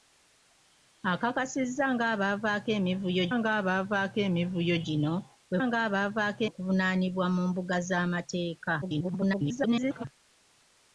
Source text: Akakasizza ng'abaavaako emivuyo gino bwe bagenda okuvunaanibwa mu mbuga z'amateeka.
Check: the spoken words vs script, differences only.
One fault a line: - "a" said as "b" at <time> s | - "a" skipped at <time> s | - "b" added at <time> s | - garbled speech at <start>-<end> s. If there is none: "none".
- "ng'abaavaako emivuyo" added at 3.4 s
- "bagenda" said as "ng'abaavaako" at 5.7 s
- garbled speech at 8.8-10.1 s